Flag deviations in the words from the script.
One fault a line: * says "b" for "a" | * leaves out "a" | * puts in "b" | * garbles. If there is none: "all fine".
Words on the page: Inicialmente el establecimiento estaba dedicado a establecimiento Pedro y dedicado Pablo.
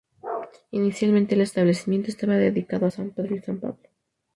* says "san" for "establecimiento"
* says "san" for "dedicado"